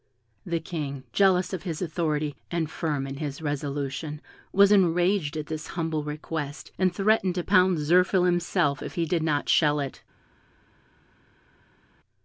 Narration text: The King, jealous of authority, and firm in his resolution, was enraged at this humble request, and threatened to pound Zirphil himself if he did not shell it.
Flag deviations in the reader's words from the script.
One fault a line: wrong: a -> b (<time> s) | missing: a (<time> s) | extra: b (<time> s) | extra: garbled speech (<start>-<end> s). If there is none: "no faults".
extra: his (1.6 s)